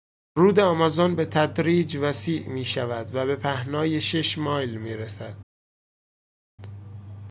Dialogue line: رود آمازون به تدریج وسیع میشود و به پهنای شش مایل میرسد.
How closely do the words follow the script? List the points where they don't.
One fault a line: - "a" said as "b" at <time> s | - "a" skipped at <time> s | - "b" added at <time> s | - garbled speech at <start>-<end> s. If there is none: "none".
none